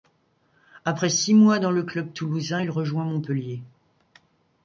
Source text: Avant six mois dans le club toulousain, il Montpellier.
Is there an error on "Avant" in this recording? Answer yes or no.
yes